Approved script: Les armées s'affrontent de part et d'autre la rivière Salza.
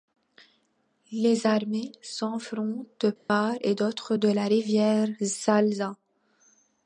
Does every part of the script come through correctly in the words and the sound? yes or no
no